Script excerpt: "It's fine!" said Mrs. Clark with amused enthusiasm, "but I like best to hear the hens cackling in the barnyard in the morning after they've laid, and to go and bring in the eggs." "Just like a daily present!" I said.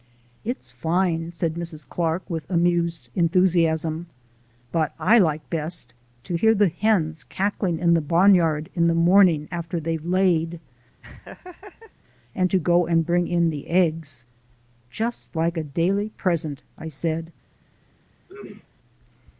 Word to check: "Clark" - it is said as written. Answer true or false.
true